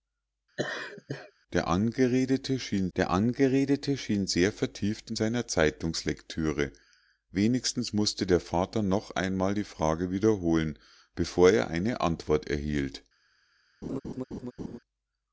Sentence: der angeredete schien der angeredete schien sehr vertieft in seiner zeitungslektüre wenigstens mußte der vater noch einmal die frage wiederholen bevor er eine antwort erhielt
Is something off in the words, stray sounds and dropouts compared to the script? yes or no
yes